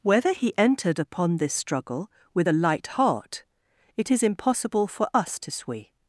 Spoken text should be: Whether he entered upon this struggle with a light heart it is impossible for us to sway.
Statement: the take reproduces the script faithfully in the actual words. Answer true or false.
true